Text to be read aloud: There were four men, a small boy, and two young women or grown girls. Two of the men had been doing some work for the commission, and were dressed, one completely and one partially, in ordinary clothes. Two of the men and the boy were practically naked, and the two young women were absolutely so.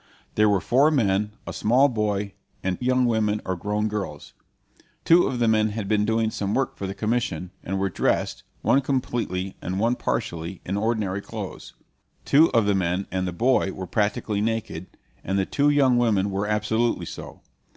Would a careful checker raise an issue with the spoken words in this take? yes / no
yes